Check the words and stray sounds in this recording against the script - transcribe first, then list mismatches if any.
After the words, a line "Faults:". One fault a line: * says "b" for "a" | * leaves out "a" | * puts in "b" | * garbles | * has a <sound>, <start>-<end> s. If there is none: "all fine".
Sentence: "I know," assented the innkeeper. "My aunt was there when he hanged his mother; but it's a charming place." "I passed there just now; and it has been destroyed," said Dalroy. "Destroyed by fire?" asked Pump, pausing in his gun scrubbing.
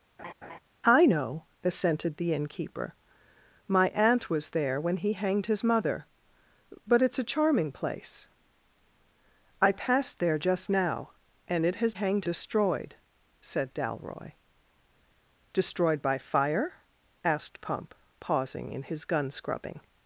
"I know," assented the innkeeper. "My aunt was there when he hanged his mother; but it's a charming place." "I passed there just now; and it has hanged destroyed," said Dalroy. "Destroyed by fire?" asked Pump, pausing in his gun scrubbing.
Faults:
* has a laugh, 0.2-0.6 s
* says "hanged" for "been"